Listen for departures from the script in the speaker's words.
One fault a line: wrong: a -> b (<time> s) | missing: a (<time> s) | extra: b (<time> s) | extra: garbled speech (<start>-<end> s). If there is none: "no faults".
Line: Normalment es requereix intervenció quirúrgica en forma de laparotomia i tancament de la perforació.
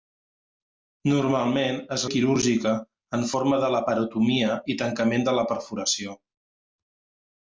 missing: requereix intervenció (2.0 s)